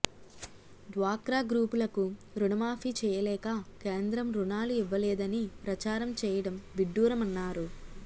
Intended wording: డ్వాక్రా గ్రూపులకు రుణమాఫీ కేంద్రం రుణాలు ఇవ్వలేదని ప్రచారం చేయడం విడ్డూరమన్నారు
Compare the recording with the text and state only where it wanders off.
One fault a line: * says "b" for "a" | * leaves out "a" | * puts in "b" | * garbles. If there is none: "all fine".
* puts in "చేయలేక"